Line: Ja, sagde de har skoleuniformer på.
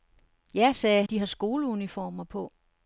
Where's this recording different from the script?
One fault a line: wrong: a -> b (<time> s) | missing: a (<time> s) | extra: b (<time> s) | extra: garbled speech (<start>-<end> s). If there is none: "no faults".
no faults